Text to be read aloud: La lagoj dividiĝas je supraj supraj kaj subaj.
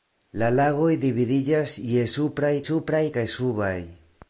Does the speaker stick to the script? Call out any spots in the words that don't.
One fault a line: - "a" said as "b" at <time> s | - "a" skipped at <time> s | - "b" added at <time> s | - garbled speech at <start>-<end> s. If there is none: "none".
none